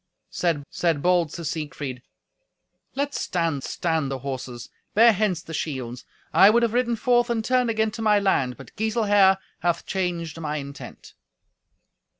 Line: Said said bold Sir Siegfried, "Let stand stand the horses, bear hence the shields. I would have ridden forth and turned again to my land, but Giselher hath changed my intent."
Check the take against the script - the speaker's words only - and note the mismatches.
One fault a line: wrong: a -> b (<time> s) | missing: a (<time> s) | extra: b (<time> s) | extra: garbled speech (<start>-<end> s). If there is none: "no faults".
no faults